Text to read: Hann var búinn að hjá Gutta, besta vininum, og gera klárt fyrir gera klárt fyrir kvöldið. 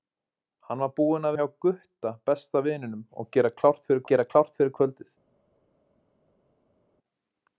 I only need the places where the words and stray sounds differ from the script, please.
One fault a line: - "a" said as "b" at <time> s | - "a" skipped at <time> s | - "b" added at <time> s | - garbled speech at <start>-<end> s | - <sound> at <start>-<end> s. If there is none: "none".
none